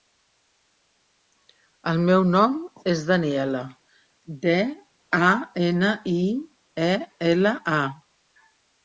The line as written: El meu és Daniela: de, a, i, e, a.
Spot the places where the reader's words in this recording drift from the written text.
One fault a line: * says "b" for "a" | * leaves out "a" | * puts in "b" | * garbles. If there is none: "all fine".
* puts in "nom"
* puts in "ena"
* puts in "ela"